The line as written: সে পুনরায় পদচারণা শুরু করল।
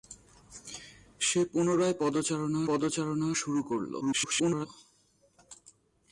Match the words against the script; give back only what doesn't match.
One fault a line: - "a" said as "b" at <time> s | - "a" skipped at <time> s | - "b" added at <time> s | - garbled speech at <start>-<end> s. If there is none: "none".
- "পদচারণা" added at 2.7 s
- garbled speech at 4.0-4.7 s